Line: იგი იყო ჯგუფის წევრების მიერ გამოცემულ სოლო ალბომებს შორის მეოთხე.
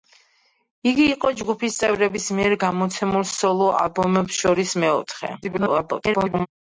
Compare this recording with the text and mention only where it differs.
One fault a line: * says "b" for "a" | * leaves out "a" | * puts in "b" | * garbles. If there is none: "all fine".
* garbles